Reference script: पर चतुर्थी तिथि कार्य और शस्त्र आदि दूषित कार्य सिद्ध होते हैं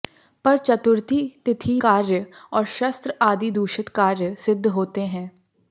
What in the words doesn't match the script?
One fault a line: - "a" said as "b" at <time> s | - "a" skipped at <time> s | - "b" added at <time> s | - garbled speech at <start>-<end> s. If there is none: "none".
none